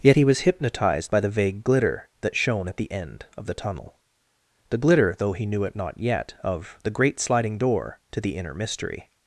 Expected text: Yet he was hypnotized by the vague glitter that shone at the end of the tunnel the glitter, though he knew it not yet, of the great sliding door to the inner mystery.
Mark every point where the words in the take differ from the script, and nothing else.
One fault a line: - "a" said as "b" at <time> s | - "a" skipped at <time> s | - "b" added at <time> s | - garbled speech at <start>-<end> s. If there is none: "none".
none